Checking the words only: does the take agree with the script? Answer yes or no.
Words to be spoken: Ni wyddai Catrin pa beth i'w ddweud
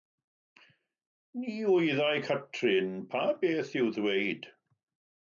yes